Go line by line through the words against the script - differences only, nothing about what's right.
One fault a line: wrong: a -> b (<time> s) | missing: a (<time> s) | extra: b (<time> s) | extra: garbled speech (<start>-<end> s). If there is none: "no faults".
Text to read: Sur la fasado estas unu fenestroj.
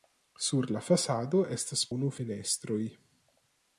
no faults